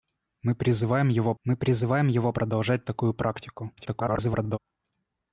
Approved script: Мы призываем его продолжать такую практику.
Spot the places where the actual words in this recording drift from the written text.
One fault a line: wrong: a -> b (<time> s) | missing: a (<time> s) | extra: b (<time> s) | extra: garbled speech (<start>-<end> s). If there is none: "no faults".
extra: мы призываем его (1.4 s)
extra: garbled speech (3.8-4.6 s)